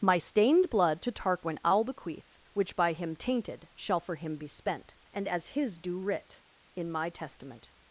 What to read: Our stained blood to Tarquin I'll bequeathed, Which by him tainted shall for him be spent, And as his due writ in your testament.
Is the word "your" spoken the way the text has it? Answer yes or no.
no